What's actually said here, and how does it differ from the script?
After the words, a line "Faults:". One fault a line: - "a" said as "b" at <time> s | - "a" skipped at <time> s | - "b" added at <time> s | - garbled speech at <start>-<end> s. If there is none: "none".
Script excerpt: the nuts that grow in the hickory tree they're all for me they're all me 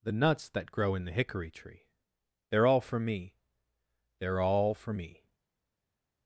the nuts that grow in the hickory tree they're all for me they're all for me
Faults:
- "for" added at 4.7 s